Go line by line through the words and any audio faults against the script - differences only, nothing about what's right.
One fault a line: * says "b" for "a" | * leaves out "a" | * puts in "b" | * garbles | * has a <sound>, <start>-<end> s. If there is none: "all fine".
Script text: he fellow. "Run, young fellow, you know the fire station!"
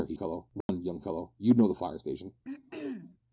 * has a dropout, 0.6-0.7 s
* has a throat clearing, 2.4-3.2 s